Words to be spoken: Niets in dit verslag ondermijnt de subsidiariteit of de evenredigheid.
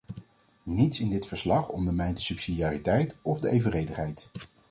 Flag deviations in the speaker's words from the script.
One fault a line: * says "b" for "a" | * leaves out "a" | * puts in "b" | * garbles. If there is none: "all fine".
all fine